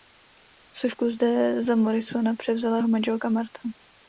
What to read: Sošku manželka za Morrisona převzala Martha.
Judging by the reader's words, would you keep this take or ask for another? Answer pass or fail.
fail